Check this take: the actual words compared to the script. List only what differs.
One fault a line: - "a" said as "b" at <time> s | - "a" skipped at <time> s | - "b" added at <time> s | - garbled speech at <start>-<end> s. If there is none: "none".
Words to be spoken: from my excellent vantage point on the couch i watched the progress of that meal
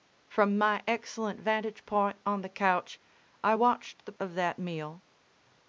- "progress" skipped at 4.1 s